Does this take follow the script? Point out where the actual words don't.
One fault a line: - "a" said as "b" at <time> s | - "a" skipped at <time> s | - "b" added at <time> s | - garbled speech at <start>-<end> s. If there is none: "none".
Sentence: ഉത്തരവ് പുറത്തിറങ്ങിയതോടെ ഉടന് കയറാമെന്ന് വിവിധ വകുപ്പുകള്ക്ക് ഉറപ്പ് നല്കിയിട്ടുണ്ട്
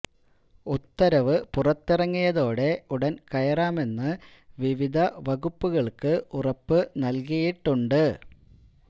none